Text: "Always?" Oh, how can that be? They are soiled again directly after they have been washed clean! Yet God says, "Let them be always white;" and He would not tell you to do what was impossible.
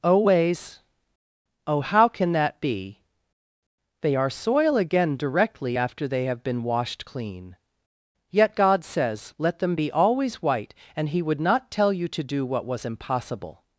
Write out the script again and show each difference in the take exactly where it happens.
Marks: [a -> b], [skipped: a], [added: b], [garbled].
"Always?" Oh, how can that be? They are [soiled -> soil] again directly after they have been washed clean! Yet God says, "Let them be always white;" and He would not tell you to do what was impossible.